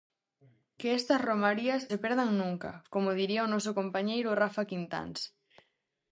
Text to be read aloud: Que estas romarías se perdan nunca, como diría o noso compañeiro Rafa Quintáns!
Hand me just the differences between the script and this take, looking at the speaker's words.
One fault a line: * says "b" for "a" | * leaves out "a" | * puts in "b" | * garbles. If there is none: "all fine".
all fine